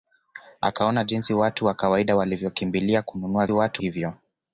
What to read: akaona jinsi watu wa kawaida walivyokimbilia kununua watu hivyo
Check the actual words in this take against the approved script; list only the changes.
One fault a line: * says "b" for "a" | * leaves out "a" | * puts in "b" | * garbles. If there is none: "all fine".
all fine